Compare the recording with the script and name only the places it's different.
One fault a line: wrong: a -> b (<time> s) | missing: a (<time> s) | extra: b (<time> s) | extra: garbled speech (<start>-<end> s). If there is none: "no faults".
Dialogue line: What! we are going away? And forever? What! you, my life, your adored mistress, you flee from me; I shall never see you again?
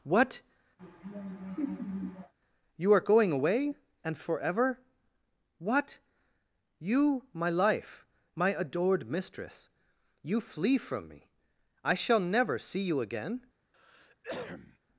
wrong: we -> you (2.8 s)
wrong: your -> my (8.4 s)